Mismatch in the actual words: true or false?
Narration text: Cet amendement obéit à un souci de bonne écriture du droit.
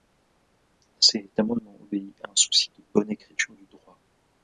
false